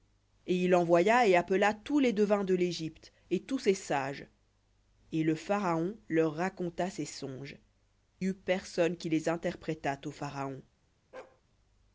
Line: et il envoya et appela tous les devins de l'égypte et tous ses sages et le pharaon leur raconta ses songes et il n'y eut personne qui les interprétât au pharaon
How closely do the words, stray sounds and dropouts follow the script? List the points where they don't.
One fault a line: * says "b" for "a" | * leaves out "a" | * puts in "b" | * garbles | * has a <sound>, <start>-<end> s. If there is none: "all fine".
* leaves out "et il n'y"
* has a bark, 11.1-11.4 s